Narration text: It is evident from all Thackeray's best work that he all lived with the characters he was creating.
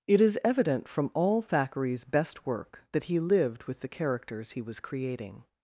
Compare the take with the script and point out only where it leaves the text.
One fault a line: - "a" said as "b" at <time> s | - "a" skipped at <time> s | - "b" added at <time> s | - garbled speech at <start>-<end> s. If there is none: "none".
- "all" skipped at 3.2 s